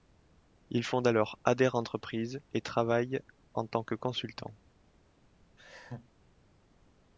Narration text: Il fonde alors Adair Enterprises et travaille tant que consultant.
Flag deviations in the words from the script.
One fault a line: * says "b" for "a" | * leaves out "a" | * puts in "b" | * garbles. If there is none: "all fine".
* puts in "en"